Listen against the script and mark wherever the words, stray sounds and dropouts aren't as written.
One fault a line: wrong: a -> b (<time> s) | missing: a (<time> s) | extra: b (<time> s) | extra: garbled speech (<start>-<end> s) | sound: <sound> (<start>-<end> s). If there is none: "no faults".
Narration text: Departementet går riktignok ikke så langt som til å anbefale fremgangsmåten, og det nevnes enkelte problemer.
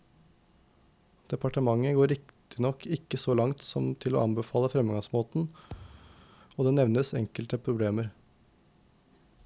sound: thud (5.7-6.3 s)